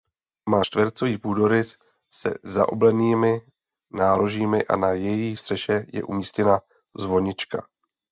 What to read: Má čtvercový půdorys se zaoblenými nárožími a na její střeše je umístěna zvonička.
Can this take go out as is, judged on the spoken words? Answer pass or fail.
pass